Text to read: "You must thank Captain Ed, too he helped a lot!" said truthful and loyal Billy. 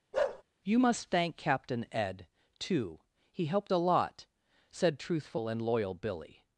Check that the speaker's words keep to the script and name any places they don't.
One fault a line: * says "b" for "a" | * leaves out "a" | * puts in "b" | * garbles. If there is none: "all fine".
all fine